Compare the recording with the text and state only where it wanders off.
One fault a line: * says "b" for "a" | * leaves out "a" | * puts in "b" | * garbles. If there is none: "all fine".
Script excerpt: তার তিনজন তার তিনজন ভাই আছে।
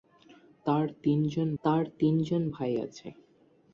all fine